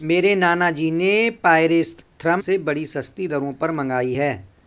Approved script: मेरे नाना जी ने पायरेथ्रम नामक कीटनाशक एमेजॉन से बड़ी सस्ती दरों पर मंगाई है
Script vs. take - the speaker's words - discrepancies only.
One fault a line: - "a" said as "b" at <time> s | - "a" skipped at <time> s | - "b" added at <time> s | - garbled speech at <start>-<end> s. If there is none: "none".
- "नामक कीटनाशक एमेजॉन" skipped at 2.4 s